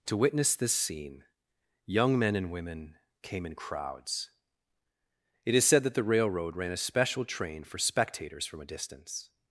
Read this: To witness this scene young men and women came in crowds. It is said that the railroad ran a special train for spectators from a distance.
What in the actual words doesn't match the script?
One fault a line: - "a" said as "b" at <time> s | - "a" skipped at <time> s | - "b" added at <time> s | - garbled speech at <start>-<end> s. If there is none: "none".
none